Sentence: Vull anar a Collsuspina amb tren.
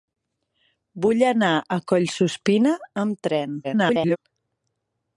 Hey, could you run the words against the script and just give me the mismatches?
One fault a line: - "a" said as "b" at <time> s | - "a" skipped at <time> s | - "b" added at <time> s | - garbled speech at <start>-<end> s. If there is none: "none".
- garbled speech at 3.6-4.2 s